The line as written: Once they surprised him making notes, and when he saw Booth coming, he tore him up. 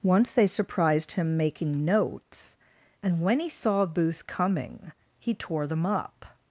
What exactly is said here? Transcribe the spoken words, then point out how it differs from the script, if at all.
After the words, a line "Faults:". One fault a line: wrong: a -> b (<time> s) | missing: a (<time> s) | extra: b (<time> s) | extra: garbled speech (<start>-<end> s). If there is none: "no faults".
Once they surprised him making notes, and when he saw Booth coming, he tore them up.
Faults:
wrong: him -> them (5.7 s)